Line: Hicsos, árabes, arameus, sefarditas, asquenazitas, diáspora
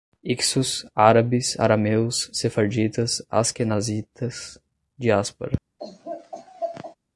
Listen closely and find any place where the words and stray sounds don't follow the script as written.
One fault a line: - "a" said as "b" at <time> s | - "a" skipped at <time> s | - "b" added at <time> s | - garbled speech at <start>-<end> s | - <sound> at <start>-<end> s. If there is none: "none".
- laugh at 5.8-7.0 s